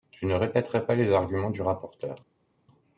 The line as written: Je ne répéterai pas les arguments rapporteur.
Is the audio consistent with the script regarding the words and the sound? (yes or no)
no